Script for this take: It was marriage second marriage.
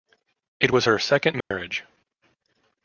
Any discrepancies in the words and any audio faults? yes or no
yes